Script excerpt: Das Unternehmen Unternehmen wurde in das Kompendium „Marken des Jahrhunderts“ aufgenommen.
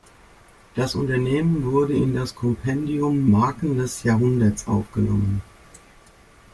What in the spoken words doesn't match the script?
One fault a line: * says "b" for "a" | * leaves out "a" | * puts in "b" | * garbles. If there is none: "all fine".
* leaves out "Unternehmen"